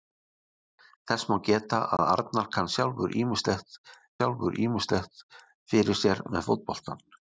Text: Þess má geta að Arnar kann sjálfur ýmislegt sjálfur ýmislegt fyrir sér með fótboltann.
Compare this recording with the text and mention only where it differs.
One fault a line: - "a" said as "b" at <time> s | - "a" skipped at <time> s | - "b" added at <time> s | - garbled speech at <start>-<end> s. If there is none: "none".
none